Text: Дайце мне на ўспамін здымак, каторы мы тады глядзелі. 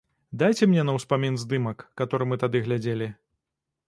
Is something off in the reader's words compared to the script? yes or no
no